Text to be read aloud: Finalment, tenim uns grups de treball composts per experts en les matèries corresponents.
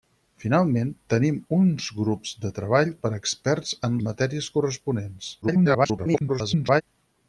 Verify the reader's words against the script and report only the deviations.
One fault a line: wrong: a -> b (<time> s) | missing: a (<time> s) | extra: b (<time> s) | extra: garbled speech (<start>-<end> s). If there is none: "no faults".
missing: composts (2.9 s)
missing: les (4.0 s)
extra: garbled speech (5.4-6.8 s)